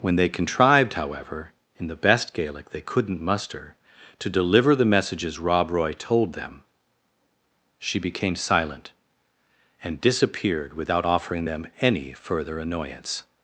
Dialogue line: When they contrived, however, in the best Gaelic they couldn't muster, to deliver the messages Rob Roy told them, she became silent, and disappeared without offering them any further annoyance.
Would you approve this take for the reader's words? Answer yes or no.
yes